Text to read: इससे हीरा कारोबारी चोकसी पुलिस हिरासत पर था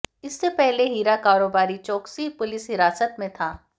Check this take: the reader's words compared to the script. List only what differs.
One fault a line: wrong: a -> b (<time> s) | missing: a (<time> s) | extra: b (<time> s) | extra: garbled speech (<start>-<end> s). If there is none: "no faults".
extra: पहले (0.5 s)
wrong: पर -> में (3.2 s)